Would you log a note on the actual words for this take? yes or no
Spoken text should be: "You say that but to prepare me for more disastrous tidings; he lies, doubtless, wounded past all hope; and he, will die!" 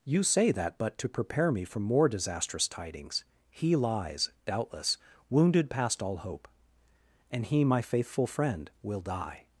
yes